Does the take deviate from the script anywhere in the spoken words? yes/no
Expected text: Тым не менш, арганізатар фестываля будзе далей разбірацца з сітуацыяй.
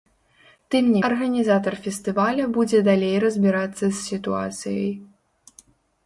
yes